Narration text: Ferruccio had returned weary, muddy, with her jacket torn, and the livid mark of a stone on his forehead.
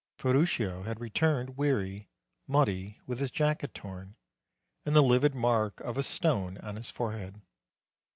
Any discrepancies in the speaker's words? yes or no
yes